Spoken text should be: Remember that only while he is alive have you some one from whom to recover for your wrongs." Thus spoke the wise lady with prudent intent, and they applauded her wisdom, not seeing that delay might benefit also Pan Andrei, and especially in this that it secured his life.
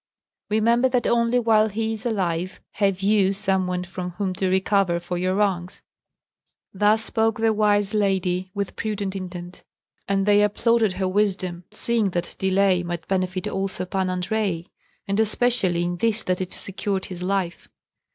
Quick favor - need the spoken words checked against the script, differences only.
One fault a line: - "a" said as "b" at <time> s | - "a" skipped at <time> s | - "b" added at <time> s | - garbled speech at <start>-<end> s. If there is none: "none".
- "not" skipped at 11.7 s